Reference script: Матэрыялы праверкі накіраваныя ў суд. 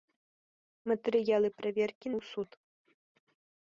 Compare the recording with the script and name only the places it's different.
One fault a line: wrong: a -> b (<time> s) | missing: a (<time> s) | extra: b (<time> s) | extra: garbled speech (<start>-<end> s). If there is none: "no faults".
missing: накіраваныя (2.1 s)